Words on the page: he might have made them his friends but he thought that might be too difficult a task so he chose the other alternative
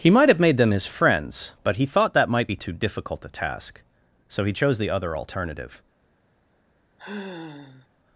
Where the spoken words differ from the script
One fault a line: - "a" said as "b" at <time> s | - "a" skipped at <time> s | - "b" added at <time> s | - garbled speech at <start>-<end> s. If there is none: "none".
none